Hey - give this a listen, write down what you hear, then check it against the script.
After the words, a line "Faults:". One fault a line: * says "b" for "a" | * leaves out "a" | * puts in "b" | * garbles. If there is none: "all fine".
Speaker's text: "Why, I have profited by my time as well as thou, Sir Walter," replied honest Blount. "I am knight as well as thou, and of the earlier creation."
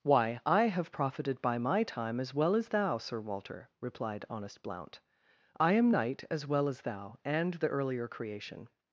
"Why, I have profited by my time as well as thou, Sir Walter," replied honest Blount. "I am knight as well as thou, and the earlier creation."
Faults:
* leaves out "of"